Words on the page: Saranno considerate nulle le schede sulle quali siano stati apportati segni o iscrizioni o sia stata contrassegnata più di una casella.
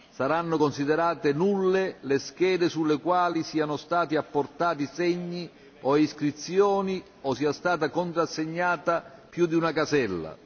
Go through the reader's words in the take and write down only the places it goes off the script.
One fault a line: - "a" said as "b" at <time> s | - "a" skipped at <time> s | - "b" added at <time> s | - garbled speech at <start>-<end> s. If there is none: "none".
none